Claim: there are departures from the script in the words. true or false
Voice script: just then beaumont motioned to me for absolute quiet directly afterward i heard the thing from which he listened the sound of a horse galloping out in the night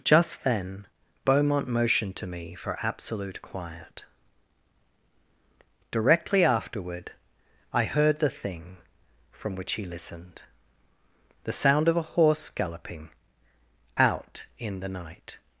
false